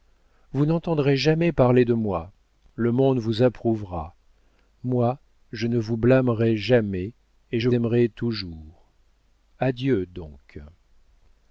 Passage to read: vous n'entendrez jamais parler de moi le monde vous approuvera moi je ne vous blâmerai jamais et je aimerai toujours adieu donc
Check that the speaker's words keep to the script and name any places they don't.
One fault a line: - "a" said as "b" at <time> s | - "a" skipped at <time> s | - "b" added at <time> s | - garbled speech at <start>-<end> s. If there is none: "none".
none